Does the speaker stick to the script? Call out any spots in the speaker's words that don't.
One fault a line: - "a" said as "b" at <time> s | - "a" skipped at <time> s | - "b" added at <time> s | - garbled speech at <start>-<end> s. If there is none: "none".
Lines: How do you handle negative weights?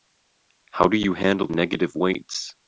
none